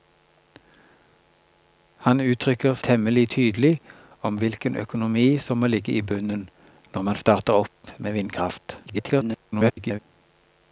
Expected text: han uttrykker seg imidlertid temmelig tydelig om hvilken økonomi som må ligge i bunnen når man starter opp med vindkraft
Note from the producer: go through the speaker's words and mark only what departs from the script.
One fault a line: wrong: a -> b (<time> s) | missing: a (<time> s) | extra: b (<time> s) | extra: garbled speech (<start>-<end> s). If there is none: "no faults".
missing: seg imidlertid (2.8 s)
extra: garbled speech (8.9-10.0 s)